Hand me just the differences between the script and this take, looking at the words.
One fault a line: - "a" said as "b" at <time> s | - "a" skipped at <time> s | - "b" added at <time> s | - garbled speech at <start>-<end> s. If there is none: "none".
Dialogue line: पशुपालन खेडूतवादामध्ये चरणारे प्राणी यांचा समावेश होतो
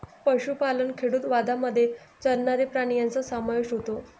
none